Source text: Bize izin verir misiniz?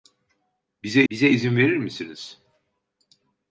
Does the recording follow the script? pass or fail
fail